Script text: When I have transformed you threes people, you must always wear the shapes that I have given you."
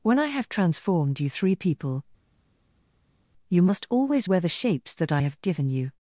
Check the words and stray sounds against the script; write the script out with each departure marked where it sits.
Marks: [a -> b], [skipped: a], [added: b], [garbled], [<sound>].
When I have transformed you [threes -> three] people, you must always wear the shapes that I have given you."